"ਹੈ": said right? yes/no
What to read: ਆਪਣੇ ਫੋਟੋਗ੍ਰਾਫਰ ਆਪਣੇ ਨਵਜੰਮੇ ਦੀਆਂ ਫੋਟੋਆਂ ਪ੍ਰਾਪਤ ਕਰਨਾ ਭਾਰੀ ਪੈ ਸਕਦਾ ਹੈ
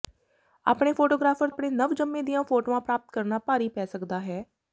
yes